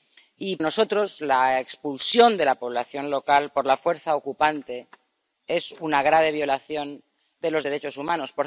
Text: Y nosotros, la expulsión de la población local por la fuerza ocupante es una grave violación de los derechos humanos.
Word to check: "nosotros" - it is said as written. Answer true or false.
true